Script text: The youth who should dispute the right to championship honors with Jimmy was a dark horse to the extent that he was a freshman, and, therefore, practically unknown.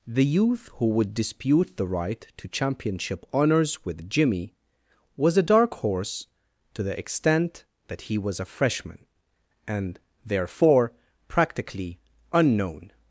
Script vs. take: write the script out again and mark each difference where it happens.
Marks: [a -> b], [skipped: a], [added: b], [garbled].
The youth who [should -> would] dispute the right to championship honors with Jimmy was a dark horse to the extent that he was a freshman, and, therefore, practically unknown.